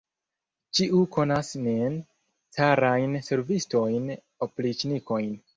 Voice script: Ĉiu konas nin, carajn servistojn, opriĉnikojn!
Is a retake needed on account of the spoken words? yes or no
no